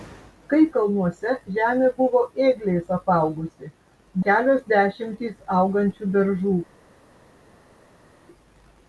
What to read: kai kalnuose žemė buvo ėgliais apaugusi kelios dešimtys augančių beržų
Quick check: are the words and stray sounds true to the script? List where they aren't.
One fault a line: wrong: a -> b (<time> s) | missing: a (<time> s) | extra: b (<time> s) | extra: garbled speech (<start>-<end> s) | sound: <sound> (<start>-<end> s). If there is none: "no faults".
no faults